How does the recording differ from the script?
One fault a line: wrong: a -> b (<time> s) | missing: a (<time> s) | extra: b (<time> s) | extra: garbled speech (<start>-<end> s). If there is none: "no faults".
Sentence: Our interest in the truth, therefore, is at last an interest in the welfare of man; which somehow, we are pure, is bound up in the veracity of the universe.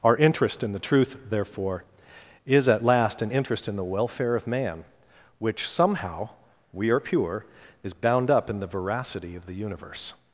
no faults